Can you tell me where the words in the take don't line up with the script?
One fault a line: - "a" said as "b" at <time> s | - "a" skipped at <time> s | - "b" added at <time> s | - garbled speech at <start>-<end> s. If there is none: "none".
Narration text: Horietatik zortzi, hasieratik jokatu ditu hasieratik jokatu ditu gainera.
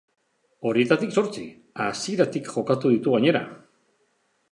- "hasieratik jokatu ditu" skipped at 3.2 s